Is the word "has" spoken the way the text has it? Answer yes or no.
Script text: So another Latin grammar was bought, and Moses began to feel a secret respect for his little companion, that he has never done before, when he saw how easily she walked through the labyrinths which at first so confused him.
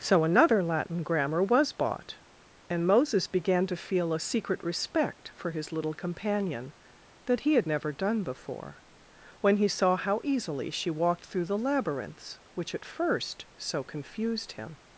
no